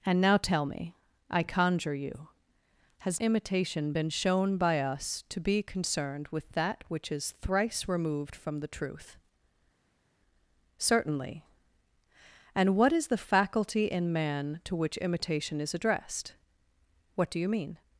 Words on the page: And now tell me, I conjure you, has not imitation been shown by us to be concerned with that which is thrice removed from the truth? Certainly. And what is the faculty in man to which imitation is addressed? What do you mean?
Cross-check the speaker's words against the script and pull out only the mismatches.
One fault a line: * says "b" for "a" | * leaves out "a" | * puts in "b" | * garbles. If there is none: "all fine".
* leaves out "not"